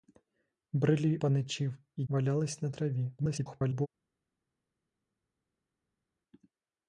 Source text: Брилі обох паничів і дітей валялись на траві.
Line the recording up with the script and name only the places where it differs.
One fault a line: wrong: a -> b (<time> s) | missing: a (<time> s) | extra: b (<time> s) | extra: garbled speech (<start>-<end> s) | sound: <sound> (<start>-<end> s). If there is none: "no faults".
missing: обох (1.2 s)
missing: дітей (2.0 s)
extra: garbled speech (3.2-3.9 s)